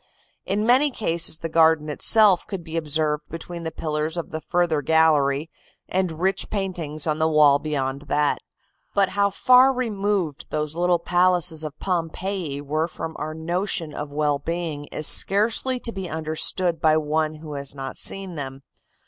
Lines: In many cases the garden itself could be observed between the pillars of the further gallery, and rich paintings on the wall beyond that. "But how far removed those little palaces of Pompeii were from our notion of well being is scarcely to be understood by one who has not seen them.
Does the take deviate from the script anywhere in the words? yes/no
no